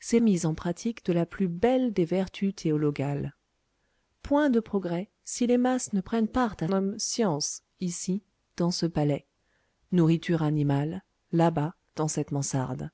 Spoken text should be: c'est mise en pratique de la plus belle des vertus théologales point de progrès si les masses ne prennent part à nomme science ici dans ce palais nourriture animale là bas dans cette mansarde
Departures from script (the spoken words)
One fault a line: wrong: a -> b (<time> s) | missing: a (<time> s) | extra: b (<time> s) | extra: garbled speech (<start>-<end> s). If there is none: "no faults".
no faults